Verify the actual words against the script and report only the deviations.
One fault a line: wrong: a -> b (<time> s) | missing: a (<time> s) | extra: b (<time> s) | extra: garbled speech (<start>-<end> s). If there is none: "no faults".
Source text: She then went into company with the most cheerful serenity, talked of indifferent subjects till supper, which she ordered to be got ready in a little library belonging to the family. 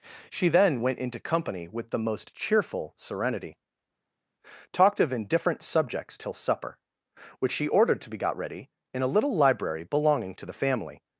no faults